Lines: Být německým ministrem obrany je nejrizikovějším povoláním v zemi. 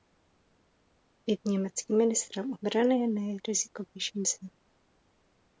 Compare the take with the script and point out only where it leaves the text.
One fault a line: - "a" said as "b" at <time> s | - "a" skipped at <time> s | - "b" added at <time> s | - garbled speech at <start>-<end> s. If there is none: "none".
- "povoláním" skipped at 4.2 s